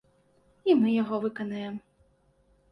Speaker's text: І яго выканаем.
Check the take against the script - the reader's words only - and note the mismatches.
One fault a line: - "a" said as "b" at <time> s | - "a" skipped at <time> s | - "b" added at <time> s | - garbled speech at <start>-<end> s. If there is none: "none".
- "мы" added at 0.8 s